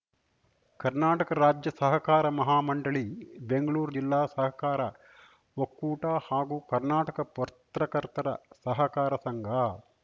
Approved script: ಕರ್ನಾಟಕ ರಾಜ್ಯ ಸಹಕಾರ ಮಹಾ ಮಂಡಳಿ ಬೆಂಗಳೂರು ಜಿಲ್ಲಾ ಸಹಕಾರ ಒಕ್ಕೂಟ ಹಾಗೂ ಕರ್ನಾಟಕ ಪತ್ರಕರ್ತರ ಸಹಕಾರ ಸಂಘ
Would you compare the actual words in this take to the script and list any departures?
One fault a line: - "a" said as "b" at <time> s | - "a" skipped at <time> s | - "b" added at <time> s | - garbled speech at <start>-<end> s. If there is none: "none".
none